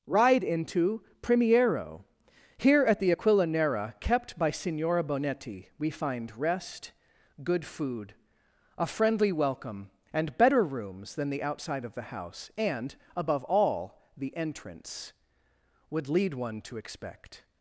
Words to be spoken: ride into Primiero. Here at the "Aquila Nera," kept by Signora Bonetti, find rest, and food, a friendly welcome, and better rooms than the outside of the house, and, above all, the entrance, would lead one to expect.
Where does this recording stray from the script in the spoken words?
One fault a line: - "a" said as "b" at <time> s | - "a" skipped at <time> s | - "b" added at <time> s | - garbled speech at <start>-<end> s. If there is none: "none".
- "we" added at 5.8 s
- "and" said as "good" at 7.4 s